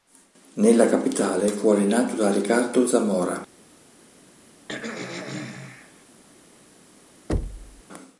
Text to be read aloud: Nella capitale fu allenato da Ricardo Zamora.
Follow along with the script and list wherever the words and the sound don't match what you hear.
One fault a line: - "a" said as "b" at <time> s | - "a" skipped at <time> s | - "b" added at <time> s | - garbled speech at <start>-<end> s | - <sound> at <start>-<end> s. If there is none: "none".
- throat clearing at 4.7-6.1 s
- thud at 7.3-7.8 s